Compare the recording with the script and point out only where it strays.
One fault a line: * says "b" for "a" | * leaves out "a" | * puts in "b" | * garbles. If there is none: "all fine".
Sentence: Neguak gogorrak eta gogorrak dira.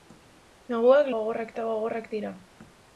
all fine